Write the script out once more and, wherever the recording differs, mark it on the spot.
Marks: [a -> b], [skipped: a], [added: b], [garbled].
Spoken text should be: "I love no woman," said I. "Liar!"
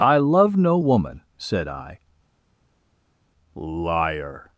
"I love no woman," said I. "Liar!"